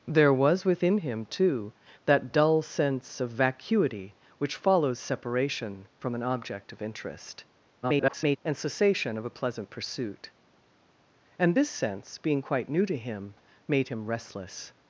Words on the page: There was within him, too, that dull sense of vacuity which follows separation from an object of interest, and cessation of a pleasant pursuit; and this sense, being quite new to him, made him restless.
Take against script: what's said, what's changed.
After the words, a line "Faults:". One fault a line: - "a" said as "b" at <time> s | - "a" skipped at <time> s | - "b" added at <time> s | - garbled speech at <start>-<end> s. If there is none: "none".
There was within him, too, that dull sense of vacuity which follows separation from an object of interest, [garbled] and cessation of a pleasant pursuit; and this sense, being quite new to him, made him restless.
Faults:
- garbled speech at 7.8-8.4 s